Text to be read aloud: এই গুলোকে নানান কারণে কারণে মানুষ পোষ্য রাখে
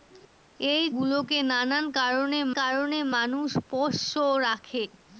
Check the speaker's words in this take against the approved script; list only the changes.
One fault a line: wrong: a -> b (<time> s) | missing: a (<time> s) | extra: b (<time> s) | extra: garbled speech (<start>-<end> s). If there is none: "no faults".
no faults